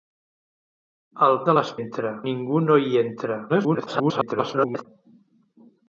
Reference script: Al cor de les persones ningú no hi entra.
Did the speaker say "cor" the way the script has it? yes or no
no